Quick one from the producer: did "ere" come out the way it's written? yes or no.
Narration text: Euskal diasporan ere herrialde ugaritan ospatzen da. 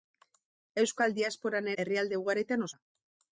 no